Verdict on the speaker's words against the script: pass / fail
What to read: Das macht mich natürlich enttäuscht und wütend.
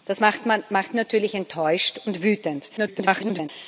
fail